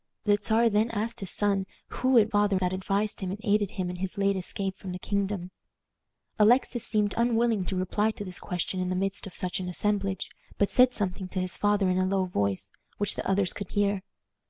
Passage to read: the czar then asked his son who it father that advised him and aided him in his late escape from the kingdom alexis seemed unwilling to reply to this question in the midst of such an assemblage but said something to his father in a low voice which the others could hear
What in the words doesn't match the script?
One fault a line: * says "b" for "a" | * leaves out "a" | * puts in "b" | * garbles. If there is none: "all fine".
all fine